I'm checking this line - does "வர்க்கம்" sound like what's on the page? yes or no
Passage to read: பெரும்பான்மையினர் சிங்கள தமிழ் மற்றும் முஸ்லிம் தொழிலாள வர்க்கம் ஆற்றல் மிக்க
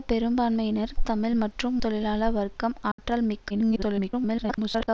yes